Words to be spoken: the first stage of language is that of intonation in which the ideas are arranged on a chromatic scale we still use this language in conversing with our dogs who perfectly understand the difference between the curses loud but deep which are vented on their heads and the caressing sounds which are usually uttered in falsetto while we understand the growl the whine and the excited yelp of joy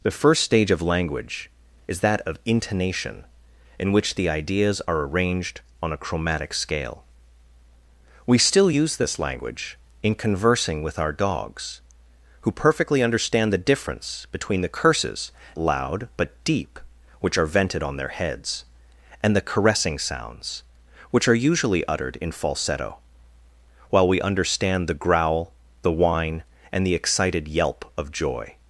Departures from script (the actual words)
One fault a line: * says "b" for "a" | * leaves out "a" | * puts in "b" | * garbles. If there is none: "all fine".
all fine